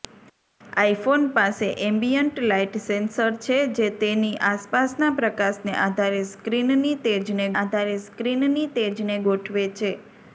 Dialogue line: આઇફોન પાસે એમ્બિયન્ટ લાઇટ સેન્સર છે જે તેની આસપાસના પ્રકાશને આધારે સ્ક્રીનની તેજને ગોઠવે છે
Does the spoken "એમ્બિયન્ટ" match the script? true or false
true